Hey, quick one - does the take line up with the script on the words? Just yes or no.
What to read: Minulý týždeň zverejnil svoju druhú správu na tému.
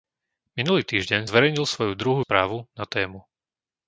yes